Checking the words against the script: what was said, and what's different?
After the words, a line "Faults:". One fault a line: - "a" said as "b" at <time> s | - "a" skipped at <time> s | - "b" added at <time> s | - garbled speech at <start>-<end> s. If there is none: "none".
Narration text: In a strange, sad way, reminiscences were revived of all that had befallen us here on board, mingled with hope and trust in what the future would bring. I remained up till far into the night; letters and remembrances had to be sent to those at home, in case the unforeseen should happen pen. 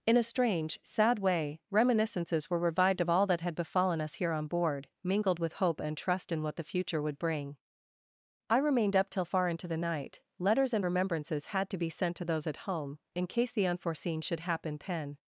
In a strange, sad way, reminiscences were revived of all that had befallen us here on board, mingled with hope and trust in what the future would bring. I remained up till far into the night; letters and remembrances had to be sent to those at home, in case the unforeseen should happen pen.
Faults:
none